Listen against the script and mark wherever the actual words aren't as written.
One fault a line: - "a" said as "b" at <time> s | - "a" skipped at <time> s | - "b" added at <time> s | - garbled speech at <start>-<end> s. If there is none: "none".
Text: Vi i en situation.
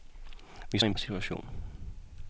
none